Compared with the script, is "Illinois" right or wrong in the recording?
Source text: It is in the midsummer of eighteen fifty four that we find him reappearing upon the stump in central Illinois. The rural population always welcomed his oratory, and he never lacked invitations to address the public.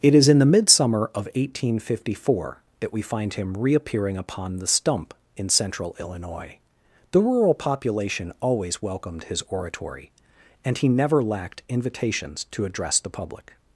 right